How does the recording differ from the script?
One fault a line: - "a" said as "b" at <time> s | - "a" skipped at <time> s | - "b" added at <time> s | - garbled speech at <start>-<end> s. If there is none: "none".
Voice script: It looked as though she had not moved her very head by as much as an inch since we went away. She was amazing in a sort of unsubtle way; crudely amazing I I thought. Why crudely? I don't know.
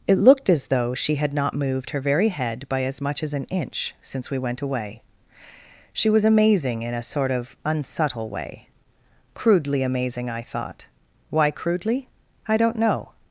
- "I" skipped at 10.4 s